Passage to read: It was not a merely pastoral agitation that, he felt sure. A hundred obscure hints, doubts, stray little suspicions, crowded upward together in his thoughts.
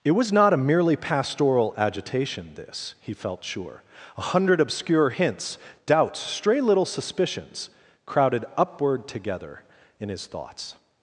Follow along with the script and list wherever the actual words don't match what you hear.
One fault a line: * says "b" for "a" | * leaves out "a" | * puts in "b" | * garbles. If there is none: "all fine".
* says "this" for "that"